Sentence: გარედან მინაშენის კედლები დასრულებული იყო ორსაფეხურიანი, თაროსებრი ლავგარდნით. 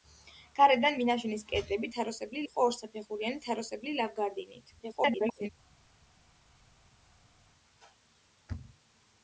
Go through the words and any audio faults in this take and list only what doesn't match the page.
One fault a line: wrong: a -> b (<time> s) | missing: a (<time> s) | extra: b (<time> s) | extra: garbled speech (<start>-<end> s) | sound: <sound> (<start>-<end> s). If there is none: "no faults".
wrong: დასრულებული -> თაროსებრი (2.0 s)
extra: garbled speech (4.8-5.5 s)